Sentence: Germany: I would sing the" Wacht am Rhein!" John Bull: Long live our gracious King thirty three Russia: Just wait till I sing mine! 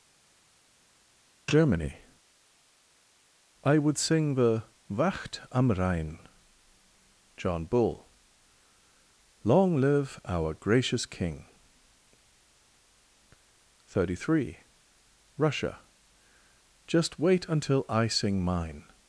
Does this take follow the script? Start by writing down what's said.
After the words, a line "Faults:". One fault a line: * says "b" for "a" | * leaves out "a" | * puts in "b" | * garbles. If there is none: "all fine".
Germany: I would sing the" Wacht am Rhein!" John Bull: Long live our gracious King thirty three Russia: Just wait until I sing mine!
Faults:
* says "until" for "till"